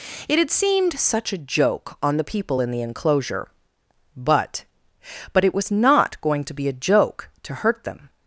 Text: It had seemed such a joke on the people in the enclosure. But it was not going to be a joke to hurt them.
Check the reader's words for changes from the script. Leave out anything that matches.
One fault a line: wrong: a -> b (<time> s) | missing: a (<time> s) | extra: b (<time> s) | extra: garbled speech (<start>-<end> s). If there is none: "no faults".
extra: But (5.3 s)